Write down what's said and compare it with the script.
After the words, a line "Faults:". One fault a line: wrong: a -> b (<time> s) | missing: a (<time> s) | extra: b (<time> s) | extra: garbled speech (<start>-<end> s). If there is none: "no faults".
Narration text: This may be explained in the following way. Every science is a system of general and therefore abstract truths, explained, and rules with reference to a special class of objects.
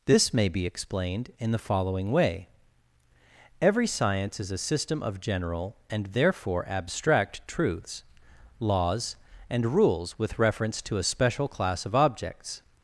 This may be explained in the following way. Every science is a system of general and therefore abstract truths, laws, and rules with reference to a special class of objects.
Faults:
wrong: explained -> laws (8.6 s)